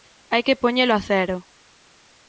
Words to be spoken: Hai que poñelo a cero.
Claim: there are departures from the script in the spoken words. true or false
false